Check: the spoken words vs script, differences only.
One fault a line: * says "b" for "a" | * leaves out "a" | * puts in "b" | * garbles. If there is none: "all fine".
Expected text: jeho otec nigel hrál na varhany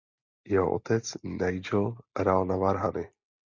all fine